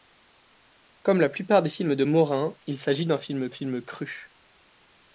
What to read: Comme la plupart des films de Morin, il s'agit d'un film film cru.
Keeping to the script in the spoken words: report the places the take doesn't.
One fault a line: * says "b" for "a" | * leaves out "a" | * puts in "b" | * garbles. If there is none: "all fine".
all fine